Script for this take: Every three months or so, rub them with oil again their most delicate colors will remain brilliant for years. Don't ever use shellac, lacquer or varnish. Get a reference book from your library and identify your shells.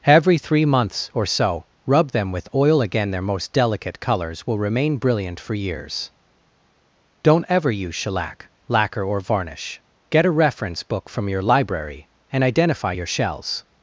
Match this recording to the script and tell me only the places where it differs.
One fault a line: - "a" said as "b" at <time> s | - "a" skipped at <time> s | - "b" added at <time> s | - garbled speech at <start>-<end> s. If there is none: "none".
none